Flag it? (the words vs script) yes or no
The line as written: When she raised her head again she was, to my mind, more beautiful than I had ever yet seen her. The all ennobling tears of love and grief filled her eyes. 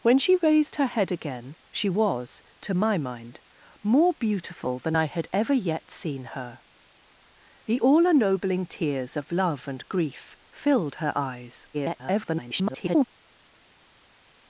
yes